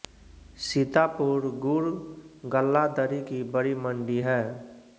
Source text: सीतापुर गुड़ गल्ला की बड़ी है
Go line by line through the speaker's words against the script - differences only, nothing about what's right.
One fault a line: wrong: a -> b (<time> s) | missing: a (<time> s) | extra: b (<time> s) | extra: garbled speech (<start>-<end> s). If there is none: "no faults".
extra: दरी (3.0 s)
extra: मंडी (3.8 s)